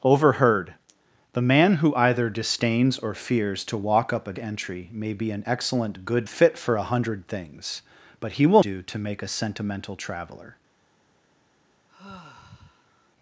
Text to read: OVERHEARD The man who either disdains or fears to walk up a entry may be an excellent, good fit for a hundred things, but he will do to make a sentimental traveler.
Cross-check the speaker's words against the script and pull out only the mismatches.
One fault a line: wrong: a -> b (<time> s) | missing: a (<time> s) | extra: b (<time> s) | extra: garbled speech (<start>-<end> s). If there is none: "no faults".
no faults